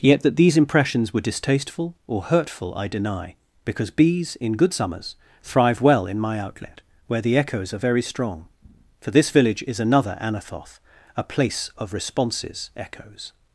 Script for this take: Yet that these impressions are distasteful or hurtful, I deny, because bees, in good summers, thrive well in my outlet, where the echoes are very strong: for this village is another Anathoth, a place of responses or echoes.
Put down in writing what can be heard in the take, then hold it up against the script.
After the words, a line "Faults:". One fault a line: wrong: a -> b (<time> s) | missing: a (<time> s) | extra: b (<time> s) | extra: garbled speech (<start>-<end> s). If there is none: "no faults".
Yet that these impressions were distasteful or hurtful, I deny, because bees, in good summers, thrive well in my outlet, where the echoes are very strong: for this village is another Anathoth, a place of responses echoes.
Faults:
wrong: are -> were (1.1 s)
missing: or (12.7 s)